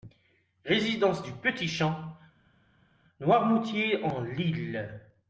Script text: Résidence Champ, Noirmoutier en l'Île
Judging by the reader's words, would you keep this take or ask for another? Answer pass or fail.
fail